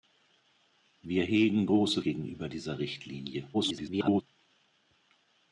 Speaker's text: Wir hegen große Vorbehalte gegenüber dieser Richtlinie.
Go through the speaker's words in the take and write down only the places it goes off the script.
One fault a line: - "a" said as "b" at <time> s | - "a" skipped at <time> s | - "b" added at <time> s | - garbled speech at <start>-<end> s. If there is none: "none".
- "Vorbehalte" skipped at 2.0 s
- garbled speech at 3.5-4.2 s